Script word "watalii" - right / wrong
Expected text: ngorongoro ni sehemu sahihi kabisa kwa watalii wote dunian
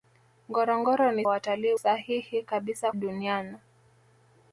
wrong